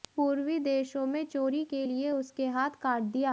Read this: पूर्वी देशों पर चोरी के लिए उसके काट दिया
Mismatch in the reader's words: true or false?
true